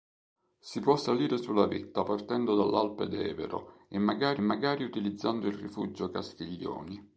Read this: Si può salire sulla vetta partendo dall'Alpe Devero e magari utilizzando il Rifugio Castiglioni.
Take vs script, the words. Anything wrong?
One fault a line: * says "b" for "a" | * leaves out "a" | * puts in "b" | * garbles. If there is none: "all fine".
* puts in "magari"